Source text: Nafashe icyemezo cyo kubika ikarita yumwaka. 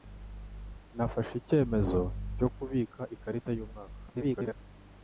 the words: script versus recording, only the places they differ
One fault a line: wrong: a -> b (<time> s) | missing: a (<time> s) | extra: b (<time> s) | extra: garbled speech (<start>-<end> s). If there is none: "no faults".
extra: garbled speech (4.1-4.6 s)